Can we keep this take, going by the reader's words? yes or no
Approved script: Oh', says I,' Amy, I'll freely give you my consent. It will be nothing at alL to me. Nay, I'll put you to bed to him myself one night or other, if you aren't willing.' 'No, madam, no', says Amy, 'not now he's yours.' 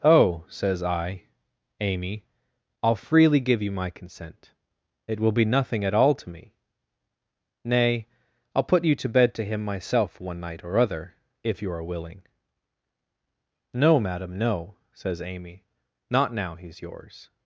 no